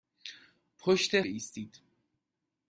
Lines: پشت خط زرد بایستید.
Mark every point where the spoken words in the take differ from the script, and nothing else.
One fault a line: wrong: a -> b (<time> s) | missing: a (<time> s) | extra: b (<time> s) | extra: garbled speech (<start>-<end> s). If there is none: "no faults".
missing: خط زرد (1.2 s)